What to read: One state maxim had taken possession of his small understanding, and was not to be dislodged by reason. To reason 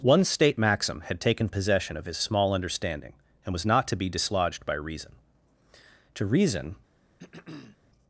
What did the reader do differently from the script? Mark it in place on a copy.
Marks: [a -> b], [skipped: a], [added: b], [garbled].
One state maxim had taken possession of his small understanding, and was not to be dislodged by reason. To reason